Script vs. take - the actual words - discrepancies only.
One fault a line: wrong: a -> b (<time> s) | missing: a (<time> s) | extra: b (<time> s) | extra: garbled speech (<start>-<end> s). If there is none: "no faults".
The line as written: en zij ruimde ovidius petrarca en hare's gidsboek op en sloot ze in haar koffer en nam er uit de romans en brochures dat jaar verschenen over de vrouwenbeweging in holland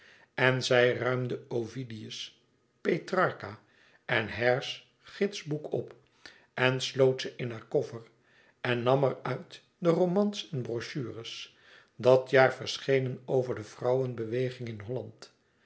no faults